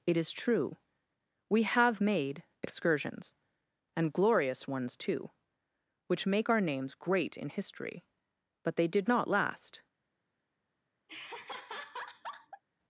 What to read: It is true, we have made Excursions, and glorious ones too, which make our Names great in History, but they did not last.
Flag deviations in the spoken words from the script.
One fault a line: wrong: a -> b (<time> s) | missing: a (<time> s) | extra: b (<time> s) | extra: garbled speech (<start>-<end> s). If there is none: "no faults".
no faults